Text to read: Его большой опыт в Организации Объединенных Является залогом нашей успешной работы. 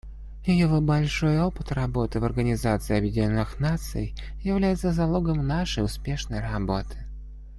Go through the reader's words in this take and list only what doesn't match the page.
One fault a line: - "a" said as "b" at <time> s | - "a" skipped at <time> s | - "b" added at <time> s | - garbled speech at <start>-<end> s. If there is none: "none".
- "работы" added at 1.7 s
- "Наций" added at 3.6 s